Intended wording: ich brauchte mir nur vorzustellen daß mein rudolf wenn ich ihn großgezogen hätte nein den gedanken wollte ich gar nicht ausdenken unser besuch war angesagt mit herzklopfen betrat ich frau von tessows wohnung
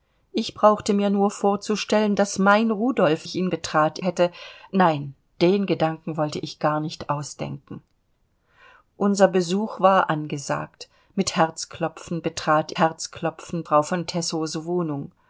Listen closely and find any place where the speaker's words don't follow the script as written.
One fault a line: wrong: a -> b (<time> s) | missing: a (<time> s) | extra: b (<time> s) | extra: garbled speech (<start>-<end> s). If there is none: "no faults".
missing: wenn (3.3 s)
wrong: großgezogen -> betrat (3.5 s)
wrong: ich -> herzklopfen (12.8 s)